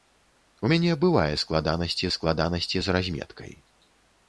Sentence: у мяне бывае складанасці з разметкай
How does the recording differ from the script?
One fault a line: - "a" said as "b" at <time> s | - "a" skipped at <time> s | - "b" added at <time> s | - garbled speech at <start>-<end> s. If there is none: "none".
- "складанасці" added at 2.2 s